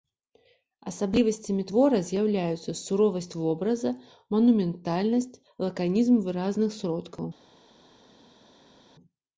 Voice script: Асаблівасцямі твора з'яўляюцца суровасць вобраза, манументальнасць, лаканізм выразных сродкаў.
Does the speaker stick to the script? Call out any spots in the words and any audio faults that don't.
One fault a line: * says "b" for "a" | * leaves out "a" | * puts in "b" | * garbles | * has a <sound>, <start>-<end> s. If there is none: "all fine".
all fine